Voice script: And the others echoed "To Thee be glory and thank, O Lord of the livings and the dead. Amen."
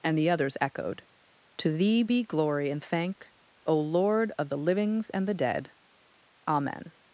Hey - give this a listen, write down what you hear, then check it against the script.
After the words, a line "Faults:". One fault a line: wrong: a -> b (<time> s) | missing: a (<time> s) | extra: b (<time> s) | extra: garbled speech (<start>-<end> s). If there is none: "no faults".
And the others echoed "To Thee be glory and thank, O Lord of the livings and the dead. Amen."
Faults:
no faults